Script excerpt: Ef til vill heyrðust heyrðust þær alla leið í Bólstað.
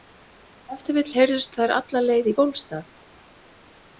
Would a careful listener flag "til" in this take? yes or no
no